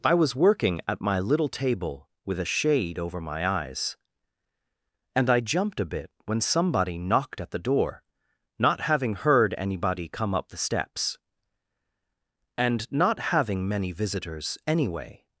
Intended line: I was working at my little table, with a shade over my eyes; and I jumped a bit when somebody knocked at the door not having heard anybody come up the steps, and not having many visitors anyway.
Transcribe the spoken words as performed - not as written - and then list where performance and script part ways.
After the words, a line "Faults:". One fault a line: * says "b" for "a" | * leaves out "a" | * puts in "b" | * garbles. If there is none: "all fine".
I was working at my little table, with a shade over my eyes; and I jumped a bit when somebody knocked at the door not having heard anybody come up the steps, and not having many visitors anyway.
Faults:
all fine